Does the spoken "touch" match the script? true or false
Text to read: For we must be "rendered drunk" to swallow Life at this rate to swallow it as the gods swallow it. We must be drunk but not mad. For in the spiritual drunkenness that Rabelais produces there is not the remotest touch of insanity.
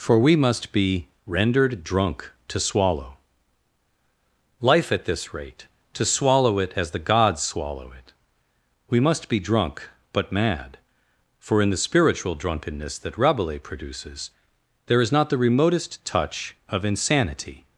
true